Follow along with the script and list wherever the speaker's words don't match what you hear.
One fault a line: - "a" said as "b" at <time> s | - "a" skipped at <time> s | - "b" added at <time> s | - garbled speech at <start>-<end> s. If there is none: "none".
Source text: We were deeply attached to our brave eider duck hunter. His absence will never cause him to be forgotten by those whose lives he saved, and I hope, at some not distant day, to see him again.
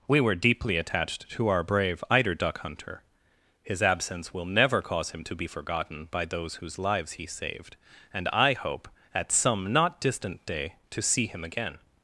none